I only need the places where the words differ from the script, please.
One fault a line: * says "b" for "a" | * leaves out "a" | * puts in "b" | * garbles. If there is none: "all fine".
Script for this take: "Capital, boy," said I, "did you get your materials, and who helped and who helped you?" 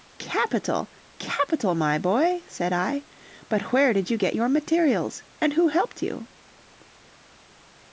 * puts in "capital my"
* puts in "but where"
* leaves out "and who helped"